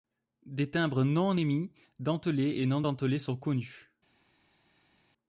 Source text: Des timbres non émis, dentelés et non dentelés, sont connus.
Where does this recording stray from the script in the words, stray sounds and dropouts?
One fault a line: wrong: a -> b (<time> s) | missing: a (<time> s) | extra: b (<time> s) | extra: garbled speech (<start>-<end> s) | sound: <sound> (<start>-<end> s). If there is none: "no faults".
no faults